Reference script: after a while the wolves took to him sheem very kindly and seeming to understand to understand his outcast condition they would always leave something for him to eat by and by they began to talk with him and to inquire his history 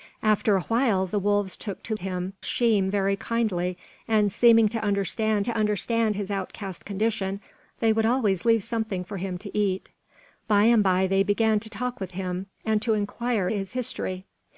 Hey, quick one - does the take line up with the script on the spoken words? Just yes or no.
yes